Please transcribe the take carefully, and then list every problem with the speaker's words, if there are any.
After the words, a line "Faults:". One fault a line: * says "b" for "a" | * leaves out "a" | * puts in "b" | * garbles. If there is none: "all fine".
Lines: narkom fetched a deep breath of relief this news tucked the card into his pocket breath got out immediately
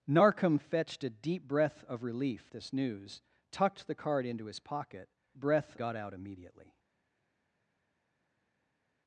narkom fetched a deep breath of relief this news tucked the card into his pocket breath got out immediately
Faults:
all fine